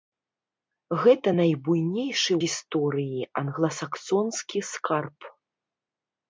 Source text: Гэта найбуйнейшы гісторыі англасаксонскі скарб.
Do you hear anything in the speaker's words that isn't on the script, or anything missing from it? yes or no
no